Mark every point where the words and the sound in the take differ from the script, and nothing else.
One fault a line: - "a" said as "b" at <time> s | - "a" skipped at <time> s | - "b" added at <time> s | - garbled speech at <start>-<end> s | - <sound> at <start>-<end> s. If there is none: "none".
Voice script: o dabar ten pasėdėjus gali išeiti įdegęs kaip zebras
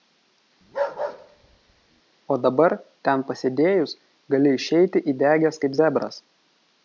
- bark at 0.6-2.0 s